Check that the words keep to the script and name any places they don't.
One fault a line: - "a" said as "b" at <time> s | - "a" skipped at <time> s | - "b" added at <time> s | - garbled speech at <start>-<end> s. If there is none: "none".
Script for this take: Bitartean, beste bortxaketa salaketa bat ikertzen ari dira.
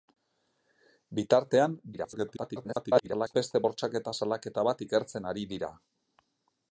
- garbled speech at 1.9-3.4 s